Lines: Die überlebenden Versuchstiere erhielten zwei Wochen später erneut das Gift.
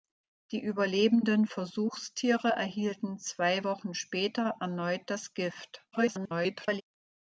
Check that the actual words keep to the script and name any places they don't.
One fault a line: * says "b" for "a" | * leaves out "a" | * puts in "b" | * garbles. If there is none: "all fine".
* garbles